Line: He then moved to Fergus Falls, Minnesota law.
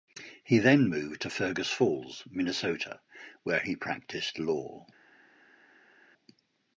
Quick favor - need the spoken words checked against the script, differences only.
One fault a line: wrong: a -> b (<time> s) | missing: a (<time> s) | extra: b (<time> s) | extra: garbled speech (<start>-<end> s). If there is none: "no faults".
extra: where he practiced (3.4 s)